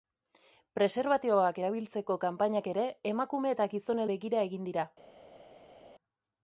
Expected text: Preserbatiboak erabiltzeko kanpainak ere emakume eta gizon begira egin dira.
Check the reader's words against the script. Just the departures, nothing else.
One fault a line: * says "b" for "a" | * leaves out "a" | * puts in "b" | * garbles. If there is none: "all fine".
all fine